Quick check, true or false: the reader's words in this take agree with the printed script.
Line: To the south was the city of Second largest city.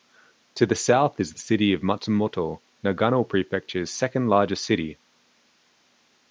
false